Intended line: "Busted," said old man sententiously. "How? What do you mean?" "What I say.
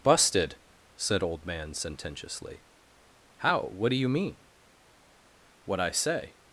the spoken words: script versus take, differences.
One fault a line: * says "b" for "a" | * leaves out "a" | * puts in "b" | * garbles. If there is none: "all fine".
all fine